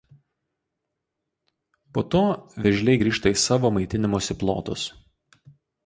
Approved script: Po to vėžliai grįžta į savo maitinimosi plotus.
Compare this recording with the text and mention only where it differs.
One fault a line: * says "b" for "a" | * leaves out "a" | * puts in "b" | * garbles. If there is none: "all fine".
all fine